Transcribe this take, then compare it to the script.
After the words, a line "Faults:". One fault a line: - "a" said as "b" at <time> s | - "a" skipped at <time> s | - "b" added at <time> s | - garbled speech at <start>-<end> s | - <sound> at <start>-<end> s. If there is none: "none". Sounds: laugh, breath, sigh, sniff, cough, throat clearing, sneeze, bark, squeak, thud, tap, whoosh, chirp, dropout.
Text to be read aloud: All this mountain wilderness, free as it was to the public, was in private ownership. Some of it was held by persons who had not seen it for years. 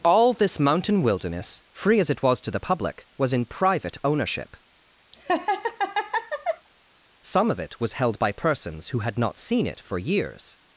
All this mountain wilderness, free as it was to the public, was in private ownership. Some of it was held by persons who had not seen it for years.
Faults:
- laugh at 5.1-6.7 s